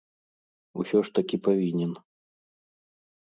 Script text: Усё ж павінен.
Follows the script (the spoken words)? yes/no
no